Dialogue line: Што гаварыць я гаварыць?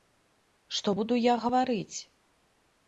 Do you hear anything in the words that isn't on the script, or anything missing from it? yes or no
yes